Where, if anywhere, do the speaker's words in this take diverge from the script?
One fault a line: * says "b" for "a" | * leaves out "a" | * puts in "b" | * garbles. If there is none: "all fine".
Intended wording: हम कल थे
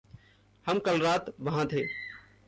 * puts in "रात वहाँ"